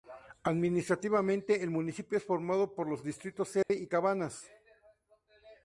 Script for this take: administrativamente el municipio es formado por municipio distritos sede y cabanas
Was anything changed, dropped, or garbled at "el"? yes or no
no